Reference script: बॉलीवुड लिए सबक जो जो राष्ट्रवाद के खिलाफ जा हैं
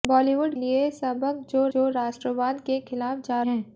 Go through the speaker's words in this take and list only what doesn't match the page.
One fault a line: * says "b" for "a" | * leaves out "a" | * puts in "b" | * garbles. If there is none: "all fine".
all fine